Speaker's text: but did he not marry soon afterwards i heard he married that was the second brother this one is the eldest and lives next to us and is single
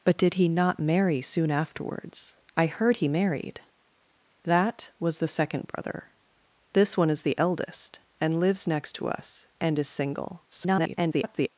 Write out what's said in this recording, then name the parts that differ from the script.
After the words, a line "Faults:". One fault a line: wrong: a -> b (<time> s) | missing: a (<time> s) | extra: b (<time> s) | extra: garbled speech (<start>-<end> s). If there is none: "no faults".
but did he not marry soon afterwards i heard he married that was the second brother this one is the eldest and lives next to us and is single [garbled]
Faults:
extra: garbled speech (10.5-11.5 s)